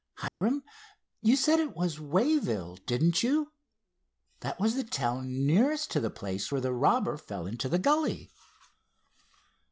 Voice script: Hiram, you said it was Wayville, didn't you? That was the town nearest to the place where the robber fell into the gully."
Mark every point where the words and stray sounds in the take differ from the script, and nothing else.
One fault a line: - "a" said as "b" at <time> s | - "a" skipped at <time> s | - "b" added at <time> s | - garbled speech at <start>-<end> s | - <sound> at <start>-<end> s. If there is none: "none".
- dropout at 0.3-0.4 s